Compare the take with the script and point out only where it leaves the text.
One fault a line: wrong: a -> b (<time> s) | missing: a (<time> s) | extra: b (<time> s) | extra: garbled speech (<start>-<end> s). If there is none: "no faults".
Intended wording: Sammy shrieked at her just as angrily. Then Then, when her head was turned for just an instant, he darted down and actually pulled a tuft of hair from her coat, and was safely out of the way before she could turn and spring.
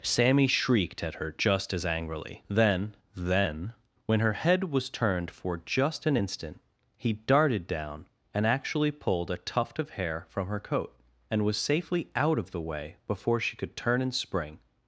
no faults